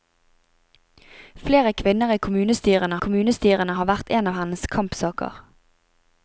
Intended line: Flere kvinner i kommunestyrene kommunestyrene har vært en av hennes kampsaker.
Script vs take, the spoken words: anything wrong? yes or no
no